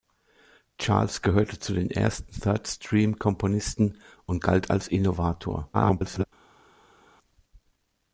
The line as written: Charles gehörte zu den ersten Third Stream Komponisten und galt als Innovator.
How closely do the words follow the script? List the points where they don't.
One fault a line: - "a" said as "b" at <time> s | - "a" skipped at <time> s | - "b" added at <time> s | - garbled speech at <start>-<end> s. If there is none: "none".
- garbled speech at 5.7-6.2 s